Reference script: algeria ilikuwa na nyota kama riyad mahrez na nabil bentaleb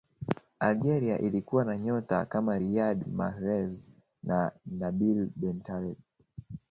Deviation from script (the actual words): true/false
false